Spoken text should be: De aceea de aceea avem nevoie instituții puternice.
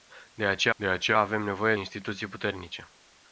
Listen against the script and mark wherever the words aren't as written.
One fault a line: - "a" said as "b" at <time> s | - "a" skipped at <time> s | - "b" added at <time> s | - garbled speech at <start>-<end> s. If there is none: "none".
none